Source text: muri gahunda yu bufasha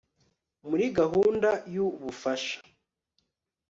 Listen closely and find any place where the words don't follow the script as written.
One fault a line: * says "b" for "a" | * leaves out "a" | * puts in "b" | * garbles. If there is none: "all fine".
all fine